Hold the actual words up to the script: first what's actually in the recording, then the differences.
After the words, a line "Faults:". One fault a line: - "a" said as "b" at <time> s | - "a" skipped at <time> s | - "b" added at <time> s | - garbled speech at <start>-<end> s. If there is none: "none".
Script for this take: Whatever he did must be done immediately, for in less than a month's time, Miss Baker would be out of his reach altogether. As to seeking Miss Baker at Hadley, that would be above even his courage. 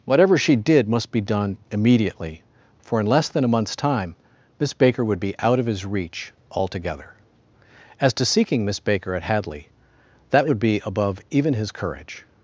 Whatever she did must be done immediately, for in less than a month's time, Miss Baker would be out of his reach altogether. As to seeking Miss Baker at Hadley, that would be above even his courage.
Faults:
- "he" said as "she" at 0.4 s